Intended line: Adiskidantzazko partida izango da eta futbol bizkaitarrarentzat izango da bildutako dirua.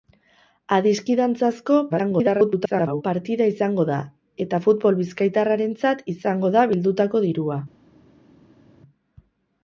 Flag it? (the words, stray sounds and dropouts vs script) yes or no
yes